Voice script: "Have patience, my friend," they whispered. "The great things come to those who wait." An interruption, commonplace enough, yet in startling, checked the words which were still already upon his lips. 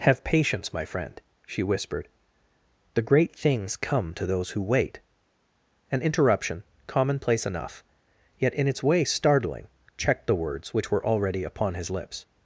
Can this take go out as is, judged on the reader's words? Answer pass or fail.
fail